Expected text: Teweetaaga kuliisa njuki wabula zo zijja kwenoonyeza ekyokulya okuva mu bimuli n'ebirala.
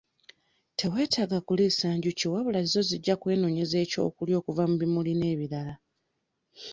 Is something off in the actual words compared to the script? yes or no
no